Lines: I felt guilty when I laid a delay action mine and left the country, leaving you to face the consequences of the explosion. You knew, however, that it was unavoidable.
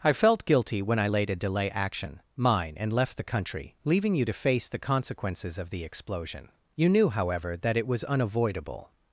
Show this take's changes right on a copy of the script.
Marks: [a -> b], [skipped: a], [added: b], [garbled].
I felt guilty when I laid a delay action mine and left the country, leaving you to face the consequences of the explosion. You knew, however, that it was unavoidable.